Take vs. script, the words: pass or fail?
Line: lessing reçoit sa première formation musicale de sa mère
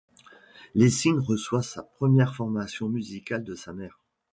pass